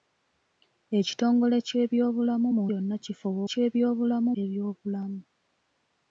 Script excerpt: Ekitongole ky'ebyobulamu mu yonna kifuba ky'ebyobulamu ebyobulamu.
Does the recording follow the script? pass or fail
pass